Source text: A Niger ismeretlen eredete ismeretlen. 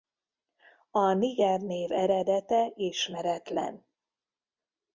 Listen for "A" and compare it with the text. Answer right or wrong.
right